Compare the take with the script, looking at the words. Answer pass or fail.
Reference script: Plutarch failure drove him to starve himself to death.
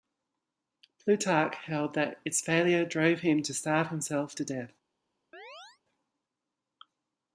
fail